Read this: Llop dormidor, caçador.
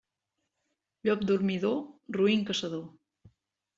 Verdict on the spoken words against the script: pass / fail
fail